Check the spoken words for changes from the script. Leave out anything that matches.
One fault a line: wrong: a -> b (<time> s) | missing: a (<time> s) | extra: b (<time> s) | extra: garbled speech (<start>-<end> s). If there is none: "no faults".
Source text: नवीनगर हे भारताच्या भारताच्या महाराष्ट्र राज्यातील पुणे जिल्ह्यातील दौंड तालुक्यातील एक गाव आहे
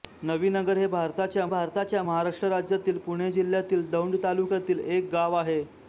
no faults